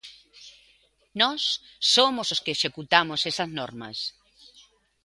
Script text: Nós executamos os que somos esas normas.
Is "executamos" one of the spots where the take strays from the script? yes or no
yes